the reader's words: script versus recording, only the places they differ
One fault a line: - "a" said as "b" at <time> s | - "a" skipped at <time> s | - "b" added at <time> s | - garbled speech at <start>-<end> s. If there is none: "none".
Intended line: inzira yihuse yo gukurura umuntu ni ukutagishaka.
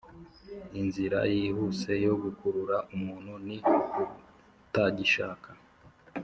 none